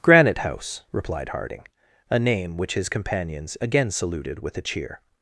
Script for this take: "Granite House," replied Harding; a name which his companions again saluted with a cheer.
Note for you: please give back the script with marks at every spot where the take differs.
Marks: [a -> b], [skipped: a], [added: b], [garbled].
"Granite House," replied Harding; a name which his companions again saluted with a cheer.